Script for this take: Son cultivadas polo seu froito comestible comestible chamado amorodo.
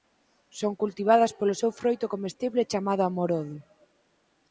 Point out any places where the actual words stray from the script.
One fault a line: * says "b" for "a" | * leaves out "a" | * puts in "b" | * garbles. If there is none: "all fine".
* leaves out "comestible"